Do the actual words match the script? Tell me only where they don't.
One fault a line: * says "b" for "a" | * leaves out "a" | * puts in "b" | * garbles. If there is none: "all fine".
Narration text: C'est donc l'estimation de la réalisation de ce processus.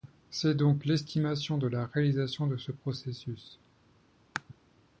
all fine